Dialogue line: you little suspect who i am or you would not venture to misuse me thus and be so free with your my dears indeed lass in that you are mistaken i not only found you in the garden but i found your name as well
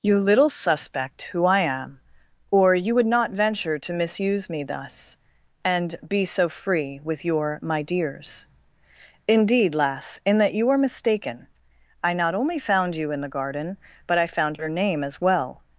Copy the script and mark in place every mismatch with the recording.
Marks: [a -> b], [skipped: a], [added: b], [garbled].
you little suspect who i am or you would not venture to misuse me thus and be so free with your my dears indeed lass in that you are mistaken i not only found you in the garden but i found your name as well